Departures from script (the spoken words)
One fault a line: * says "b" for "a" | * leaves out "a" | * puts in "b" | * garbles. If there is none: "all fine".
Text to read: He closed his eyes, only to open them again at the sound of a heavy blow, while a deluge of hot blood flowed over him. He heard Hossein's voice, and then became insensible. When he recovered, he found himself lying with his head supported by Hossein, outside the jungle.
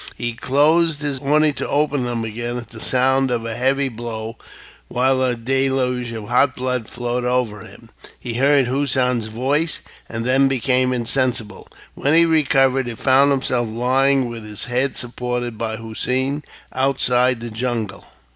* leaves out "eyes"